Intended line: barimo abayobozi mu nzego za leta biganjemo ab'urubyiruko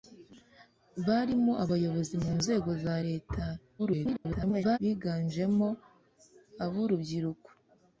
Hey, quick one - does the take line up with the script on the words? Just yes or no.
no